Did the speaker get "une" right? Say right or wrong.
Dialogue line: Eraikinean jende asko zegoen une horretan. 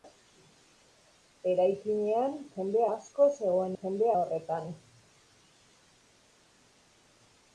wrong